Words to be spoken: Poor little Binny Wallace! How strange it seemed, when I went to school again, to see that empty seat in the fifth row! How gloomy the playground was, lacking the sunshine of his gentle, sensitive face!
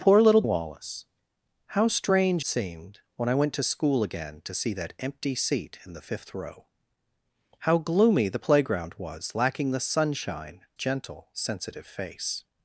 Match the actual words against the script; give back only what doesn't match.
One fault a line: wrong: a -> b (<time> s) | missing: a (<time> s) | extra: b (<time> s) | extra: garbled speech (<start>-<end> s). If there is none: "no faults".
missing: Binny (0.4 s)
missing: it (2.4 s)
missing: of his (10.6 s)